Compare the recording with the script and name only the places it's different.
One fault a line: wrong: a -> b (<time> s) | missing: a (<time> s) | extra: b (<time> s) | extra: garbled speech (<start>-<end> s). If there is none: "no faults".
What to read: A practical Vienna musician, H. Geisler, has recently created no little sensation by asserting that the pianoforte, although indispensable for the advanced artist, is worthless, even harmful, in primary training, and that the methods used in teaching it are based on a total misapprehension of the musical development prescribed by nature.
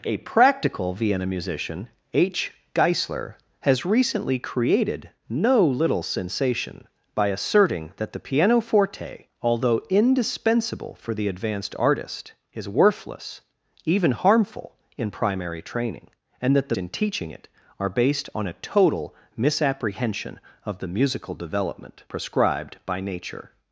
missing: methods used (16.8 s)